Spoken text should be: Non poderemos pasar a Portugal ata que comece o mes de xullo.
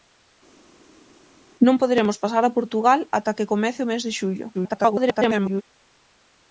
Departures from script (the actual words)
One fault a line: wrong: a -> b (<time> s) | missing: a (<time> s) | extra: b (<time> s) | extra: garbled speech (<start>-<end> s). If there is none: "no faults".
extra: garbled speech (4.5-5.6 s)